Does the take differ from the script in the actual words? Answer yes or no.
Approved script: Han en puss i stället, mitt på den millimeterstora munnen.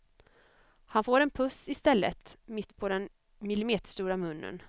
yes